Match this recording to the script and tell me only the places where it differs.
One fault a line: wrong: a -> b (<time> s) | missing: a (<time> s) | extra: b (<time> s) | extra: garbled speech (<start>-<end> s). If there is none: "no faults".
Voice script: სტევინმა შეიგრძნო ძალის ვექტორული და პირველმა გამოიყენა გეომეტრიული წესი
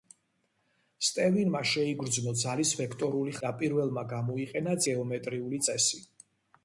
no faults